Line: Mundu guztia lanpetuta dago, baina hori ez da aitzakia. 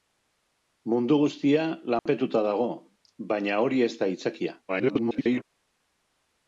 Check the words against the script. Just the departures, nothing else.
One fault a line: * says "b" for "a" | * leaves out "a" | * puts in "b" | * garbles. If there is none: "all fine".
* garbles